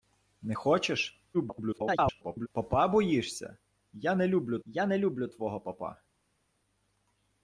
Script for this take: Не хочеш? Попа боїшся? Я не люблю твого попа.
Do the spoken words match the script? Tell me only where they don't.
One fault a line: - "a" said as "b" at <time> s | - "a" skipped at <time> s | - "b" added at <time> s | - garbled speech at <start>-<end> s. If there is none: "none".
- garbled speech at 1.3-2.5 s
- "я не люблю" added at 4.7 s